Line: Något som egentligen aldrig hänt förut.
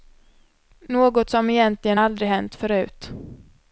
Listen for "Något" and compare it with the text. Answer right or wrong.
right